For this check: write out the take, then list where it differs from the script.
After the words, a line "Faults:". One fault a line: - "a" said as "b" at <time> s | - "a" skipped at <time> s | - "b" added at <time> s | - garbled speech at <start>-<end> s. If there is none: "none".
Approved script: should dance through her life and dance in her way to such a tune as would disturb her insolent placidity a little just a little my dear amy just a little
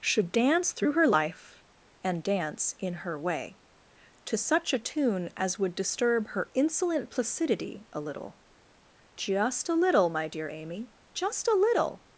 should dance through her life and dance in her way to such a tune as would disturb her insolent placidity a little just a little my dear amy just a little
Faults:
none